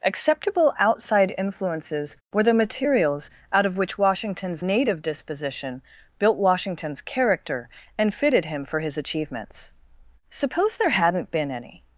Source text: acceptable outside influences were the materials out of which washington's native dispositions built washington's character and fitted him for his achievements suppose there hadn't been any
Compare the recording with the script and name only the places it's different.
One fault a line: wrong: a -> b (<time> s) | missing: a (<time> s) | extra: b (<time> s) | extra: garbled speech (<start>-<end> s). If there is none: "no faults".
wrong: dispositions -> disposition (5.0 s)